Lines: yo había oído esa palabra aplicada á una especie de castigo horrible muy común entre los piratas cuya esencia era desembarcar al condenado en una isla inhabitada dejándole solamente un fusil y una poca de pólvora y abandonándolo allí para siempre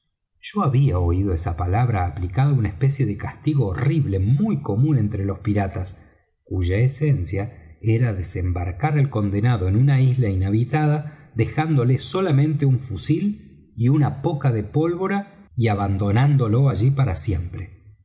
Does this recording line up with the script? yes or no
yes